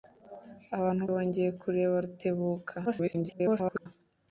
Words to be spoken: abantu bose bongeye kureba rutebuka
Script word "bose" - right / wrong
wrong